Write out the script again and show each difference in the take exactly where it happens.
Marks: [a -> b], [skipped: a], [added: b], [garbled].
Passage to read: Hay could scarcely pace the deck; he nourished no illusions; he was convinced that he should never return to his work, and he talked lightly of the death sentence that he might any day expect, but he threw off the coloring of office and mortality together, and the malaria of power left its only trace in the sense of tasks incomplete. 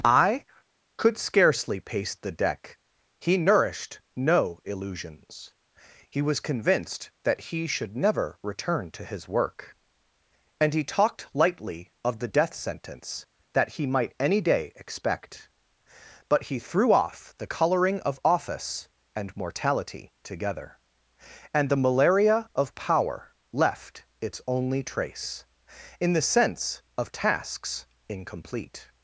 [Hay -> I] could scarcely pace the deck; he nourished no illusions; he was convinced that he should never return to his work, and he talked lightly of the death sentence that he might any day expect, but he threw off the coloring of office and mortality together, and the malaria of power left its only trace in the sense of tasks incomplete.